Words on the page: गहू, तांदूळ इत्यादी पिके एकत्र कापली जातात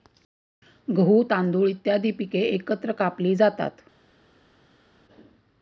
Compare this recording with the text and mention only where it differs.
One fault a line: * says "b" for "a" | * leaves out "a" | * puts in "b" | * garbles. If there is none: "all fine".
all fine